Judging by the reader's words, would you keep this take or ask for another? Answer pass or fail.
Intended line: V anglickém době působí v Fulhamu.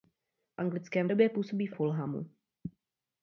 pass